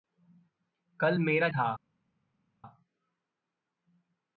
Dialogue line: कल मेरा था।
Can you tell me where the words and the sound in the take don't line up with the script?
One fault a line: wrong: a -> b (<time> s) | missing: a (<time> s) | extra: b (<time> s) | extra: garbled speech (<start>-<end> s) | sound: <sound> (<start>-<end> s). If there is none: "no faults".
no faults